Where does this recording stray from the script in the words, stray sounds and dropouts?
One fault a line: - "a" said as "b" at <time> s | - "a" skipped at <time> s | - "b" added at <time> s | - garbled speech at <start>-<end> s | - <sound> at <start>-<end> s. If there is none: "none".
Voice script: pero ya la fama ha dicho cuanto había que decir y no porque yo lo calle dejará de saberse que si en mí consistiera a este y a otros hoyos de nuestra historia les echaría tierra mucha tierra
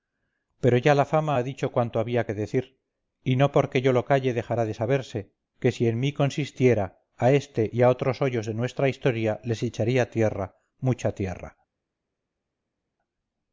none